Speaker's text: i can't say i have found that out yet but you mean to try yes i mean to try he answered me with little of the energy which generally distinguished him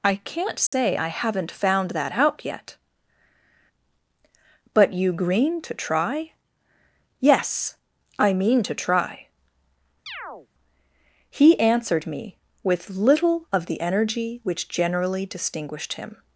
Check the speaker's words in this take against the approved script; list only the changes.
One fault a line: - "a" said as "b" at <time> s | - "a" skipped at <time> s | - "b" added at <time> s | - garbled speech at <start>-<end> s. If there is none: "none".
- "have" said as "haven't" at 1.1 s
- "mean" said as "green" at 5.1 s